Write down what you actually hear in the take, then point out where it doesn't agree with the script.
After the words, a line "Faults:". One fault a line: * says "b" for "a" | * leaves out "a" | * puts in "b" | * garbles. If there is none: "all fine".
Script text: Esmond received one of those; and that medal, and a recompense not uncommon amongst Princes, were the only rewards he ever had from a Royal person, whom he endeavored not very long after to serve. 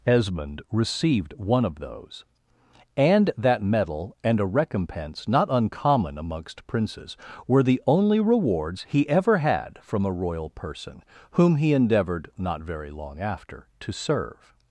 Esmond received one of those; and that medal, and a recompense not uncommon amongst Princes, were the only rewards he ever had from a Royal person, whom he endeavored not very long after to serve.
Faults:
all fine